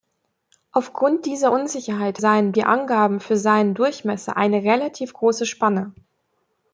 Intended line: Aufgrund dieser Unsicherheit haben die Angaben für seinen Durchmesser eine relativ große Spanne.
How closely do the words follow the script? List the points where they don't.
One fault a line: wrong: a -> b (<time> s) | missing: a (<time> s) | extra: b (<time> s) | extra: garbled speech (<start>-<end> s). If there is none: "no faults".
wrong: haben -> seinen (2.2 s)